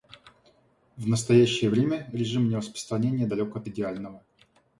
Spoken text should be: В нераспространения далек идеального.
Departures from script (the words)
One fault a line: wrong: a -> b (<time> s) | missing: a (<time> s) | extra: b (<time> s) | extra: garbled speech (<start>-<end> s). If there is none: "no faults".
extra: настоящее время режим (1.1 s)
extra: от (3.5 s)